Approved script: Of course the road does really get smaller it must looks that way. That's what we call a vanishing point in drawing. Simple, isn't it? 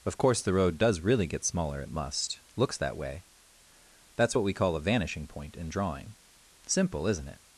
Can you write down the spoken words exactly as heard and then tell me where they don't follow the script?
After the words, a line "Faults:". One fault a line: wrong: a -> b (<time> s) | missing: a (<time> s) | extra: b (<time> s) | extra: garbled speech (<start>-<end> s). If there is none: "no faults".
Of course the road does really get smaller it must looks that way. That's what we call a vanishing point in drawing. Simple, isn't it?
Faults:
no faults